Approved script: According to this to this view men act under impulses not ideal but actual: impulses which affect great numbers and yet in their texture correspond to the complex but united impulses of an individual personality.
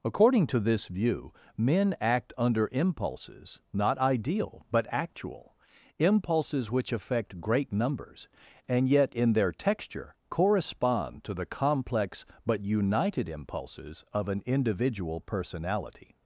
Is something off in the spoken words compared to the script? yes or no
yes